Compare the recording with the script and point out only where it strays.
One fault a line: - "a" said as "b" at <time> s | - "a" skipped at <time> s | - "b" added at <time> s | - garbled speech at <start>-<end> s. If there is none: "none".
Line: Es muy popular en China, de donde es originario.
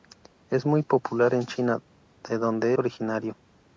- "es" skipped at 2.7 s